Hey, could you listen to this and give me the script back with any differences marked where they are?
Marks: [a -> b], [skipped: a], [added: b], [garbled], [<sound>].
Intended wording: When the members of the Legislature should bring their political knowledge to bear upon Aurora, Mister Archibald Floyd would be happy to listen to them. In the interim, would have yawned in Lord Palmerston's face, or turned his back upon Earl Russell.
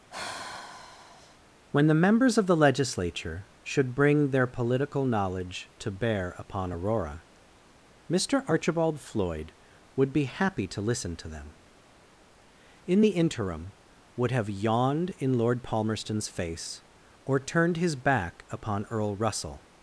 [sigh] When the members of the Legislature should bring their political knowledge to bear upon Aurora, Mister Archibald Floyd would be happy to listen to them. In the interim, would have yawned in Lord Palmerston's face, or turned his back upon Earl Russell.